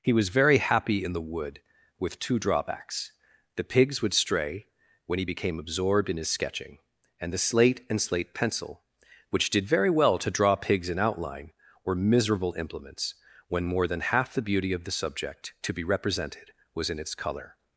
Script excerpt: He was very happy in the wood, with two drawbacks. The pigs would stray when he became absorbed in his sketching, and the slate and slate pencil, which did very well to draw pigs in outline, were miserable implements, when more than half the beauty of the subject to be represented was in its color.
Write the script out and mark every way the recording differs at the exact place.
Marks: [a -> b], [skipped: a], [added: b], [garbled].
He was very happy in the wood, with two drawbacks. The pigs would stray when he became absorbed in his sketching, and the slate and slate pencil, which did very well to draw pigs in outline, were miserable implements, when more than half the beauty of the subject to be represented was in its color.